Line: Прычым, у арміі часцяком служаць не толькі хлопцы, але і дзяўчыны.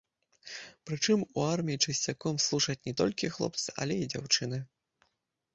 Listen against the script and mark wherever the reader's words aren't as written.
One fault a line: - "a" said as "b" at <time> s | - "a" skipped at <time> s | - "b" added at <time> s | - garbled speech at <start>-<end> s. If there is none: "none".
none